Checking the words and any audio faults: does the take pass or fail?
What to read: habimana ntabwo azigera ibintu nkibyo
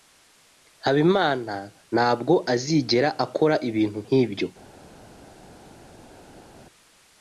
fail